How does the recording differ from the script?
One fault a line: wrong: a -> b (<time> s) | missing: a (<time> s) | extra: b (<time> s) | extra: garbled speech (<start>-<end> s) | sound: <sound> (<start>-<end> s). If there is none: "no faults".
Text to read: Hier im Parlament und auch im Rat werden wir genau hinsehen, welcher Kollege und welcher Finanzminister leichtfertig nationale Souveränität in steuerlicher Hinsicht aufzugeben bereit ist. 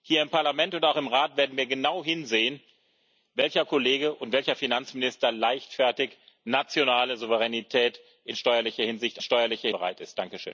wrong: aufzugeben -> steuerlicher (9.2 s)